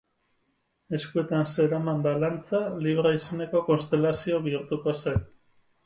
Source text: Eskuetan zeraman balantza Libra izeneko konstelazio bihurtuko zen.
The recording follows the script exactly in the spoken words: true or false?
true